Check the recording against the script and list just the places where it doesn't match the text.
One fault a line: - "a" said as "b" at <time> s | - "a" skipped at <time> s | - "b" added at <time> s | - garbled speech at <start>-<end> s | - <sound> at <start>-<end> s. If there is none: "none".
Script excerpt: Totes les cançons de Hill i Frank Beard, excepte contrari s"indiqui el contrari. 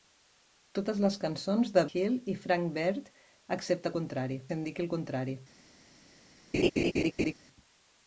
- laugh at 6.5-7.3 s